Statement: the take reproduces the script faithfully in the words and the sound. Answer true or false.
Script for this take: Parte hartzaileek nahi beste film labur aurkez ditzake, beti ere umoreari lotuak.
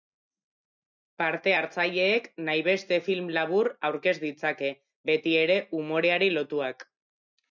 true